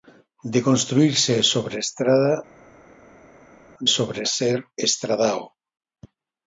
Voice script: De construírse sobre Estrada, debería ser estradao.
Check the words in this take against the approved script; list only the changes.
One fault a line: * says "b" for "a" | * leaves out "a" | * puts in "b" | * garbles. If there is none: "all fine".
* says "sobre" for "debería"